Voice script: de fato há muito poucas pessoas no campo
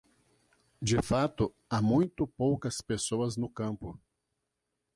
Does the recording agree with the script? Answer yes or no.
yes